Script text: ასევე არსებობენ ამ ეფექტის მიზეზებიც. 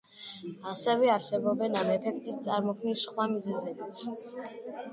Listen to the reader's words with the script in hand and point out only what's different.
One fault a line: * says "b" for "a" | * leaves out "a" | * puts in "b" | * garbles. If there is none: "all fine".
* puts in "წარმოქმნის სხვა"